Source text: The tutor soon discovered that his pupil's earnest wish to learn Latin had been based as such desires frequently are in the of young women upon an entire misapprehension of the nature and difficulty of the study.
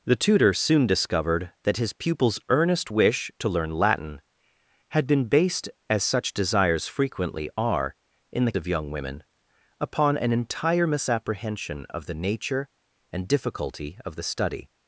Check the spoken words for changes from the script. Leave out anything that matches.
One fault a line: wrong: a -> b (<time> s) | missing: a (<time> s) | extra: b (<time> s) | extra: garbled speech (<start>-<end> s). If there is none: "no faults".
no faults